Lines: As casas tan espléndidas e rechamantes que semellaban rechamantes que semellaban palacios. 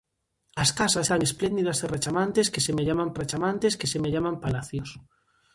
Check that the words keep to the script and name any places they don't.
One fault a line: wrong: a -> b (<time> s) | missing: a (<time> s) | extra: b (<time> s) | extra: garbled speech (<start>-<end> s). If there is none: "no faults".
no faults